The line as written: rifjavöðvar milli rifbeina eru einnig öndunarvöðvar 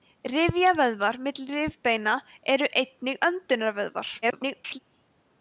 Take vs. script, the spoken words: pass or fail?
fail